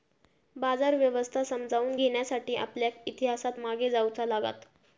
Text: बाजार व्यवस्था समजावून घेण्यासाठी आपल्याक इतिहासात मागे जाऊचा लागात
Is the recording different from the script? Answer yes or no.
no